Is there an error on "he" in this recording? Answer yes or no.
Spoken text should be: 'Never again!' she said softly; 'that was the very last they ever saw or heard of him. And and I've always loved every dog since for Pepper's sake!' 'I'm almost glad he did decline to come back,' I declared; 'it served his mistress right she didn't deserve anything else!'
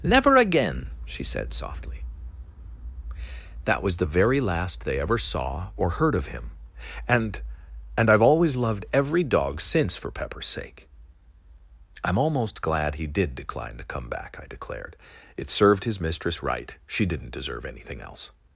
no